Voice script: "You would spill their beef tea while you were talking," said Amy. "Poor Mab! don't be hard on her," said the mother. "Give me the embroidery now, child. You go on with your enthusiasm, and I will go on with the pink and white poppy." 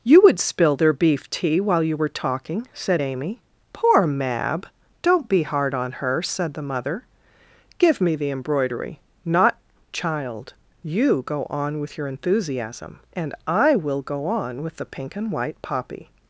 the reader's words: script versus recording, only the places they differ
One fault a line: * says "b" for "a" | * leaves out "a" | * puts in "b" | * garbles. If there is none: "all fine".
* says "not" for "now"